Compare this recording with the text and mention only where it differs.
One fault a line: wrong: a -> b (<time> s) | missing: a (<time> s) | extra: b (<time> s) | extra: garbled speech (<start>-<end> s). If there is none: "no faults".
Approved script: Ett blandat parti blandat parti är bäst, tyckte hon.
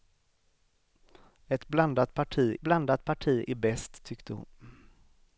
no faults